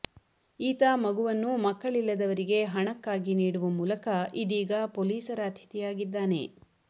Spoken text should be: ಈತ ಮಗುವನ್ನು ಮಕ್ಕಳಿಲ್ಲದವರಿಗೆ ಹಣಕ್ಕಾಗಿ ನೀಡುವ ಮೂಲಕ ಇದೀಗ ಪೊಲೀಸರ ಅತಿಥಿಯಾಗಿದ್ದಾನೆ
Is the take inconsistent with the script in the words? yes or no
no